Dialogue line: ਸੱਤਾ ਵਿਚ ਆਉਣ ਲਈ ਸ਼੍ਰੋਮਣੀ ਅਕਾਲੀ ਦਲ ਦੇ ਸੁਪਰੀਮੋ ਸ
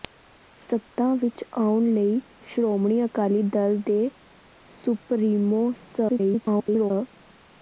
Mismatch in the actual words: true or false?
true